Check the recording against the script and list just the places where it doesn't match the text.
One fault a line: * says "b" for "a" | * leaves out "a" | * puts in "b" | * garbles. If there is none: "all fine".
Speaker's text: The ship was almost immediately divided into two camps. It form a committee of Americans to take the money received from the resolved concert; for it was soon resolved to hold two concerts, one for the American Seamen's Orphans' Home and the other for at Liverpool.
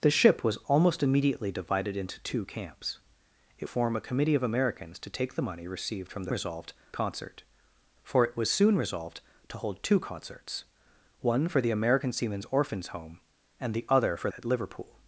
all fine